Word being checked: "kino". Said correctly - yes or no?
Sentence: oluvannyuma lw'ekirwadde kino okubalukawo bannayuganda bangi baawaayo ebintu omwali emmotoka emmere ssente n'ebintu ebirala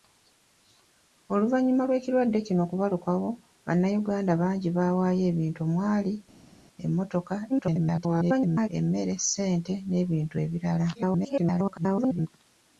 yes